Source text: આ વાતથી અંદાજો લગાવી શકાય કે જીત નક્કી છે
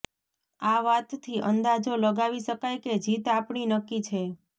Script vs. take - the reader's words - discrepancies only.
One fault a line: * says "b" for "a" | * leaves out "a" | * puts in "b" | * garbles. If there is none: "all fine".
* puts in "આપણી"